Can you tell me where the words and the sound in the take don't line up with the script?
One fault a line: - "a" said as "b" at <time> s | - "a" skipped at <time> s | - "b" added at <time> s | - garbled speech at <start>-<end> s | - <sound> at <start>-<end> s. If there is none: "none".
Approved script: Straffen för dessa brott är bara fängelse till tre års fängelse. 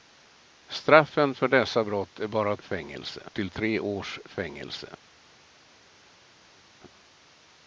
none